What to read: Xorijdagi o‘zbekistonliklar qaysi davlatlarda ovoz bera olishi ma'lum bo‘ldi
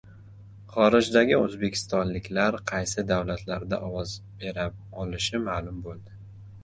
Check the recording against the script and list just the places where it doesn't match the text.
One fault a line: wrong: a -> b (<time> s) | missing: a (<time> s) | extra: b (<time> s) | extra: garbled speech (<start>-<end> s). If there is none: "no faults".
no faults